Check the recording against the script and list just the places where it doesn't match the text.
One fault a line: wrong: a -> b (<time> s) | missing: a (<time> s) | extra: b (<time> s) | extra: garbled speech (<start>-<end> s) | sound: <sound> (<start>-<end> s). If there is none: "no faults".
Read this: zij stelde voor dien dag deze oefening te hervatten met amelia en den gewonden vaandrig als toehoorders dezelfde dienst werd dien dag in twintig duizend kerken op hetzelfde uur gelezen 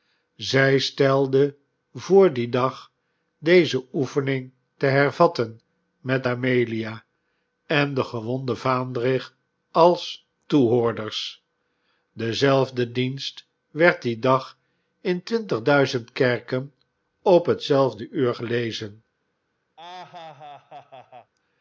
sound: laugh (19.8-21.3 s)